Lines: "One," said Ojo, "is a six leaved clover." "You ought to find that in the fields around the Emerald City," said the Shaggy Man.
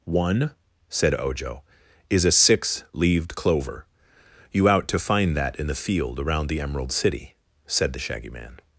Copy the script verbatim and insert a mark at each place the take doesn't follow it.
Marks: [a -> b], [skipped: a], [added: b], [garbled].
"One," said Ojo, "is a six leaved clover." "You [ought -> out] to find that in the [fields -> field] around the Emerald City," said the Shaggy Man.